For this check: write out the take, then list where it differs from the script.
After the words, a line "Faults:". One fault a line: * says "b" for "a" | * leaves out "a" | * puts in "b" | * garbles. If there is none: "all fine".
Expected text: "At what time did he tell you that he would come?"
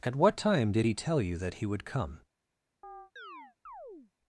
"At what time did he tell you that he would come?"
Faults:
all fine